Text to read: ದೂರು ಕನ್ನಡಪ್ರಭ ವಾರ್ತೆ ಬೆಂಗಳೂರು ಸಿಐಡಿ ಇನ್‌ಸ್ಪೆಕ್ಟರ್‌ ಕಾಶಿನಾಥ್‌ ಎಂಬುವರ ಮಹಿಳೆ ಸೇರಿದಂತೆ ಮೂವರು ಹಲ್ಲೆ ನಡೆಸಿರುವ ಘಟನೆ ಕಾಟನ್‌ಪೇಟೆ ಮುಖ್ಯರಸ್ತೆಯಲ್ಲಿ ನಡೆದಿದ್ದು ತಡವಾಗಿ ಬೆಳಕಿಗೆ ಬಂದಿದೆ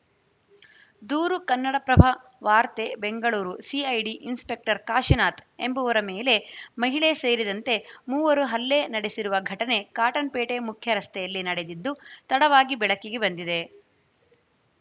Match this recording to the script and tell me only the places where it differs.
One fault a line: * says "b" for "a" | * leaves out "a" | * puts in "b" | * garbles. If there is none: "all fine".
* puts in "ಮೇಲೆ"